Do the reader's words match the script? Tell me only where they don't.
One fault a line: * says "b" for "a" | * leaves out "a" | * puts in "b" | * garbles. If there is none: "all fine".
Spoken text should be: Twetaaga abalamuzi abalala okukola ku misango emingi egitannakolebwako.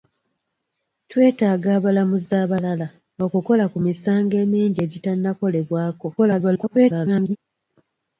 * garbles